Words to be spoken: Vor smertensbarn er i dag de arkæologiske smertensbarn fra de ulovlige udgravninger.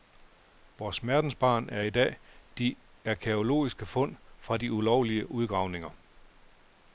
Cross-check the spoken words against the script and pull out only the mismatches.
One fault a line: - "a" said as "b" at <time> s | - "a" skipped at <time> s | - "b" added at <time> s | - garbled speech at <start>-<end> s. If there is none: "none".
- "smertensbarn" said as "fund" at 3.9 s